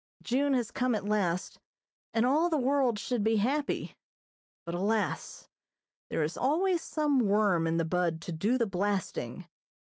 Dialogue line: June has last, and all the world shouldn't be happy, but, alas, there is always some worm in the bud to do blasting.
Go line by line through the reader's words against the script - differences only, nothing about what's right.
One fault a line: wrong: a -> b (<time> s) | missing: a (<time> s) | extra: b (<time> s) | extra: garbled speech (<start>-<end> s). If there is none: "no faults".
extra: come at (0.7 s)
wrong: shouldn't -> should (3.0 s)
extra: the (8.5 s)